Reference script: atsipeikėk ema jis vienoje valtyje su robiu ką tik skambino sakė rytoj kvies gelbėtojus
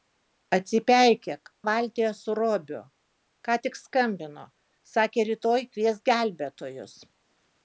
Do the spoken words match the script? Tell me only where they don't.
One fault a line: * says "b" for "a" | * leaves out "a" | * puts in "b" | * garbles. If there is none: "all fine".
* leaves out "ema jis vienoje"